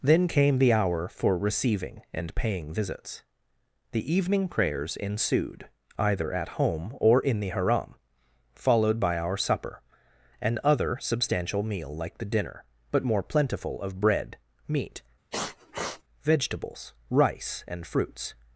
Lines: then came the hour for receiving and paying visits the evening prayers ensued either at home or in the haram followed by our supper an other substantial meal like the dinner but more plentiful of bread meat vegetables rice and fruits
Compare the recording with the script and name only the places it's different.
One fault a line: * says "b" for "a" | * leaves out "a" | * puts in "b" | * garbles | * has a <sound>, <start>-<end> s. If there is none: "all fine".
* has a sniff, 15.3-16.0 s